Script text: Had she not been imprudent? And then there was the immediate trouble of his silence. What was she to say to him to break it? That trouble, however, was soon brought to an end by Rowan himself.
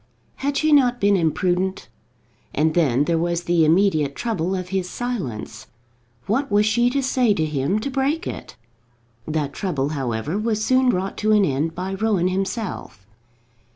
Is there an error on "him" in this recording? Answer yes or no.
no